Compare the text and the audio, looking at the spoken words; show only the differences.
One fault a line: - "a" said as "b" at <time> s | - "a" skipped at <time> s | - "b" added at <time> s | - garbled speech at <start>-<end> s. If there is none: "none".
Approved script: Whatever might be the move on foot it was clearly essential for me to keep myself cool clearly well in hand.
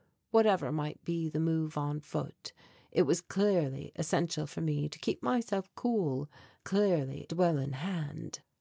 none